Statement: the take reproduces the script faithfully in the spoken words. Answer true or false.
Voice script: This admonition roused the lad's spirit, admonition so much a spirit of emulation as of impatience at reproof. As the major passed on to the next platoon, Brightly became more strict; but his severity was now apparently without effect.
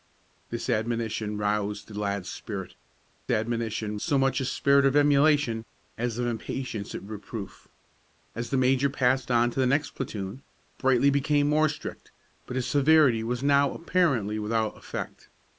true